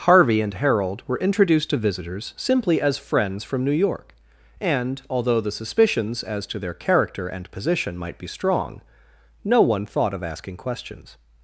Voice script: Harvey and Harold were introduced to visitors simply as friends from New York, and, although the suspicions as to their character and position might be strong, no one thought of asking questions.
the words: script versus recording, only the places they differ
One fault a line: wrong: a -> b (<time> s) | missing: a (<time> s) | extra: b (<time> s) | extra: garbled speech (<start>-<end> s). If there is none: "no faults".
no faults